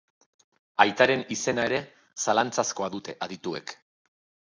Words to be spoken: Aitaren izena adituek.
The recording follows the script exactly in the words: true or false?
false